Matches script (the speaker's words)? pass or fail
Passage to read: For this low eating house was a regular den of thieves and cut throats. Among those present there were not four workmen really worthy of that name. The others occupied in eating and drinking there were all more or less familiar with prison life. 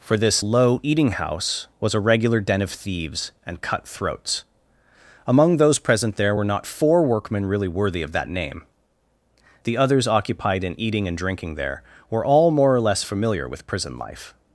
pass